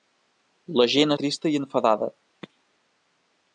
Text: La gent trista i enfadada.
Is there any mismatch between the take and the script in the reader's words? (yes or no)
no